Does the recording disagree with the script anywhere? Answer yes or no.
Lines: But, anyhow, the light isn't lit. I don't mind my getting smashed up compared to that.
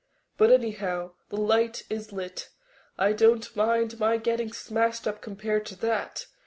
yes